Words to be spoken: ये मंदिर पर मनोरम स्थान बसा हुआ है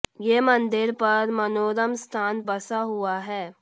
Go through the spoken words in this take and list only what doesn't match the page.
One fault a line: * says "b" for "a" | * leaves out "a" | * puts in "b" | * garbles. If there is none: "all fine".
all fine